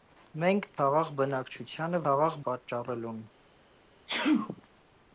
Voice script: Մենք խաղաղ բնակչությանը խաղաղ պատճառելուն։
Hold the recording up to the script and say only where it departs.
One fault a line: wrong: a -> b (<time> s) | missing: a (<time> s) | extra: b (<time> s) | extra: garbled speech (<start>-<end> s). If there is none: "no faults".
no faults